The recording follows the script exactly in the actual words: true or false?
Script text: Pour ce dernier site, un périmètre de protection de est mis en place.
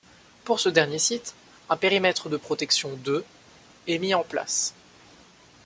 true